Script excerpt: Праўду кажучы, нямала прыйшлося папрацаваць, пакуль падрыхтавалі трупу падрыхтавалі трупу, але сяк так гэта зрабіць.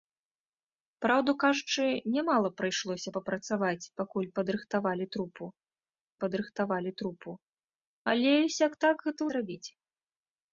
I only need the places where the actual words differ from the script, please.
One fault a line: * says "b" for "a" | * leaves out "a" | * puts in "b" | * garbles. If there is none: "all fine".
all fine